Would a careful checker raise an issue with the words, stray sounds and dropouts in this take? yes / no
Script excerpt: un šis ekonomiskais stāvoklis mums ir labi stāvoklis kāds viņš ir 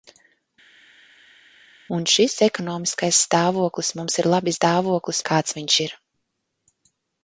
no